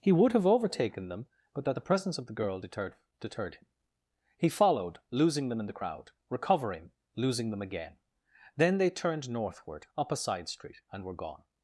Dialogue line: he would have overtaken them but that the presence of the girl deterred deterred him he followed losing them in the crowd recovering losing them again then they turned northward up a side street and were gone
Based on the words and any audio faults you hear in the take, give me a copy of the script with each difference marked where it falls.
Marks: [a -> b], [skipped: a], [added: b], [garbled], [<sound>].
he would have overtaken them but that the presence of the girl deterred deterred him he followed losing them in the crowd recovering losing them again then they turned northward up a side street and were gone